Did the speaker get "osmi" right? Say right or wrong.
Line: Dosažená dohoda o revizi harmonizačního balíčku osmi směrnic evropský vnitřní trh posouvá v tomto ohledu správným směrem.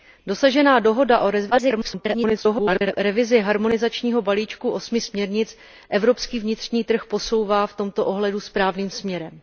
right